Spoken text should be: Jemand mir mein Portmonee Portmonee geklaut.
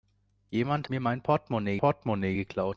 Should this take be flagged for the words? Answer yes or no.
no